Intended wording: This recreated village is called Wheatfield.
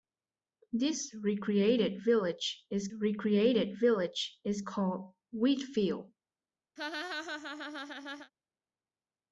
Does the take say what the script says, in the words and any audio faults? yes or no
no